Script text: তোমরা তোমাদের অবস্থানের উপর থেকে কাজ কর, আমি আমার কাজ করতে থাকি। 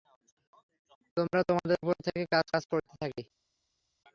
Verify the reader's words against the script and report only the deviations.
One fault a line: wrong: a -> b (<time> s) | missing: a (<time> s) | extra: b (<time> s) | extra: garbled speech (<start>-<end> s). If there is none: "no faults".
missing: অবস্থানের (1.8 s)
missing: কর আমি আমার (2.5 s)